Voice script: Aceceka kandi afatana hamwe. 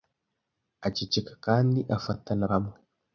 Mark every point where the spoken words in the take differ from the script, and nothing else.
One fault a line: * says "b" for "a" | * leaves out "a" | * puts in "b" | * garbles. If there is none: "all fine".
all fine